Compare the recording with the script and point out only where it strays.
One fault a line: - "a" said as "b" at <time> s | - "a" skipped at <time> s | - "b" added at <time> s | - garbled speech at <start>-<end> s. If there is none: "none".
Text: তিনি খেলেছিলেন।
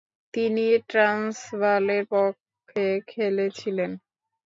- "ট্রান্সভালের পক্ষে" added at 0.9 s